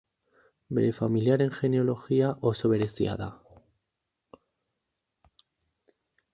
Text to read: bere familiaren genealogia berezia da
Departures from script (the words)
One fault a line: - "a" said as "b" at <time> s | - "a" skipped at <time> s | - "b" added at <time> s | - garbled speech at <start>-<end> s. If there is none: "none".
- "oso" added at 2.5 s